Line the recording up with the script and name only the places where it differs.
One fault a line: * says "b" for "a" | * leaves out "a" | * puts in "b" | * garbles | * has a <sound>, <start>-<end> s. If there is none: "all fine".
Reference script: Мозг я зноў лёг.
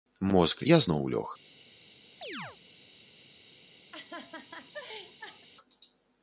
* has a chirp, 2.2-2.6 s
* has a laugh, 3.9-5.5 s